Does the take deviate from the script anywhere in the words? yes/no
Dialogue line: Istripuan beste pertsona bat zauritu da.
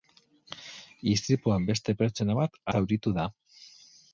no